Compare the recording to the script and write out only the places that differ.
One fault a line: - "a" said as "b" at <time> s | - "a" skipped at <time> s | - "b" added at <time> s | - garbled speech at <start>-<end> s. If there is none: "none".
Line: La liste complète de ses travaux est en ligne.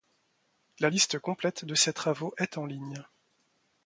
none